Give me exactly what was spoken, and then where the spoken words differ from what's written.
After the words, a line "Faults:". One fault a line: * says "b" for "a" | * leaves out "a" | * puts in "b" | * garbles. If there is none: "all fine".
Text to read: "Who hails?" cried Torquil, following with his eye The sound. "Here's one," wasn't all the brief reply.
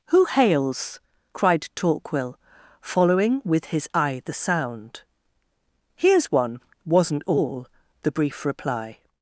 "Who hails?" cried Torquil, following with his eye The sound. "Here's one," wasn't all the brief reply.
Faults:
all fine